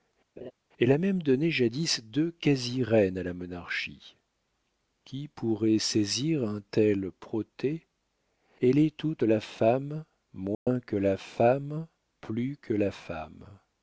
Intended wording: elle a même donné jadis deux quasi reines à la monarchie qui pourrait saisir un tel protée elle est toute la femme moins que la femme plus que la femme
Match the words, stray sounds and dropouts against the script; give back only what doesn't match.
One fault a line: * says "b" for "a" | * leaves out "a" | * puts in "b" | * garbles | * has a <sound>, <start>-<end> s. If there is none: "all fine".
* has a laugh, 0.4-0.5 s
* has a dropout, 10.5-10.7 s